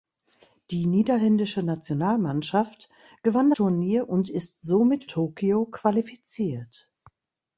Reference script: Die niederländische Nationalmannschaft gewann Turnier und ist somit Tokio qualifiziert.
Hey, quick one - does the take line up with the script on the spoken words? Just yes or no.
yes